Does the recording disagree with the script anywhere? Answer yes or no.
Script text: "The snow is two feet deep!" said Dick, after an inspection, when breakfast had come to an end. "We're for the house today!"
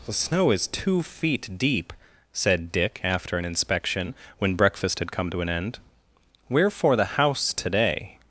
no